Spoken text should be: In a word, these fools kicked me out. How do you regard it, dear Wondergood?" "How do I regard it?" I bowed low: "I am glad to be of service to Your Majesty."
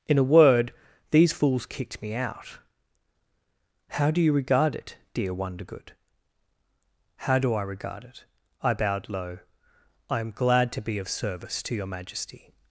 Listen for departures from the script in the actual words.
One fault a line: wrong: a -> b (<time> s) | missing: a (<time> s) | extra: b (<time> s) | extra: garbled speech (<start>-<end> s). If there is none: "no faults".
no faults